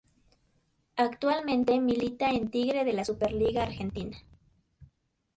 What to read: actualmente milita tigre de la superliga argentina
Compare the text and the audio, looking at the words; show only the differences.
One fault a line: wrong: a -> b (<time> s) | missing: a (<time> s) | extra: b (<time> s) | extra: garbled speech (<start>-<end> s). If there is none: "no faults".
extra: en (2.3 s)